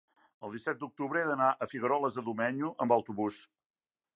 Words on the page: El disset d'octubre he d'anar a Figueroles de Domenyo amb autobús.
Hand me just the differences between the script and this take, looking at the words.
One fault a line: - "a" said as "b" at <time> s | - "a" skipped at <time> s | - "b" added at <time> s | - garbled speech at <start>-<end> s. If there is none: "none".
none